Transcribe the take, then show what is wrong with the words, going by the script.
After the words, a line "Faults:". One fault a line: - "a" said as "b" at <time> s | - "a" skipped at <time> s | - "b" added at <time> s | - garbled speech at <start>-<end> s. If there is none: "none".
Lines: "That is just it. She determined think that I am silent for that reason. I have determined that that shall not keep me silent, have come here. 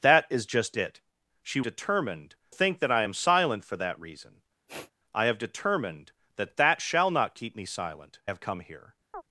"That is just it. She determined think that I am silent for that reason. I have determined that that shall not keep me silent, have come here.
Faults:
none